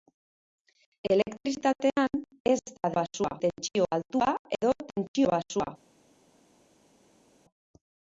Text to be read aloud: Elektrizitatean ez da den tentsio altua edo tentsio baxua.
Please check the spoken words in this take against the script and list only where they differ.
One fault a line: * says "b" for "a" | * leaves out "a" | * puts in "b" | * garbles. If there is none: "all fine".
* says "baxua" for "den"